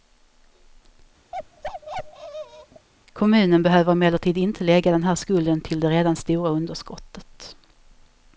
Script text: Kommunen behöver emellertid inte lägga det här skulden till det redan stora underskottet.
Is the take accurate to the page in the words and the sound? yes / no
no